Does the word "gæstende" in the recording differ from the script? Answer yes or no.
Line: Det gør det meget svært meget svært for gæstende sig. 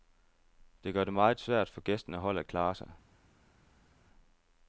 yes